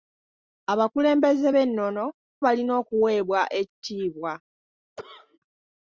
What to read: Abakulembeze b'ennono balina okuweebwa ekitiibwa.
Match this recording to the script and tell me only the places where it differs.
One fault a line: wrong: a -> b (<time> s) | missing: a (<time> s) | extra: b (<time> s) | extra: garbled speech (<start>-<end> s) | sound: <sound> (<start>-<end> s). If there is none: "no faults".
sound: dropout (3.7-3.8 s)
sound: cough (5.0-5.4 s)